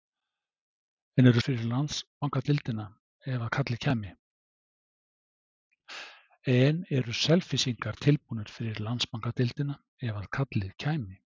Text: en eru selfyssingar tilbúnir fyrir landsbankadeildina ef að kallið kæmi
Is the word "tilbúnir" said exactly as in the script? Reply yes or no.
no